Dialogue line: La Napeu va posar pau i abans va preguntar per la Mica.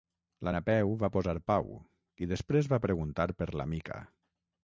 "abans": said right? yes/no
no